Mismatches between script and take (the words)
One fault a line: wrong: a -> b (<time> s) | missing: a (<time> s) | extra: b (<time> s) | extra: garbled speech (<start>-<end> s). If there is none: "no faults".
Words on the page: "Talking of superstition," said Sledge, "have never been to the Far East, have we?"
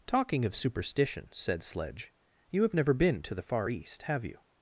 extra: you (2.5 s)
wrong: we -> you (4.2 s)